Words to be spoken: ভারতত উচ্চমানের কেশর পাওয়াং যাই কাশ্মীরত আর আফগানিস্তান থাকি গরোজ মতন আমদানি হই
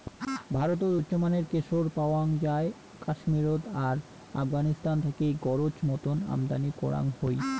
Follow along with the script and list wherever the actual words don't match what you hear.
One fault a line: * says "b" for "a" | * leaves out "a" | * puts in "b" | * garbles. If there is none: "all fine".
* puts in "করাং"